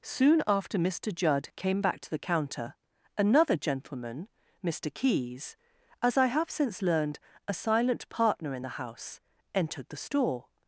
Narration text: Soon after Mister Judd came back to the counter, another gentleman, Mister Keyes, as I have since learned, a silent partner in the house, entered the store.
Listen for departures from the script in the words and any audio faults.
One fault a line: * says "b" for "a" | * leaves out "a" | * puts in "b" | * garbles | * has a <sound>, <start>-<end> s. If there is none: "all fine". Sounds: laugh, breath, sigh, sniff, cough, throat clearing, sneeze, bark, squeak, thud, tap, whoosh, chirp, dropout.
all fine